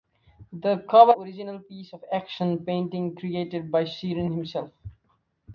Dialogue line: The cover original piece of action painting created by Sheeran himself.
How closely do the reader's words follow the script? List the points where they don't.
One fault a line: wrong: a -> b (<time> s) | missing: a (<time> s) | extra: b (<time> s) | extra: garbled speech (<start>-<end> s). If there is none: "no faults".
no faults